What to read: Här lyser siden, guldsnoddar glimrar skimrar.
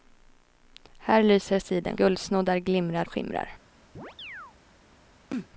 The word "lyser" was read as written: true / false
true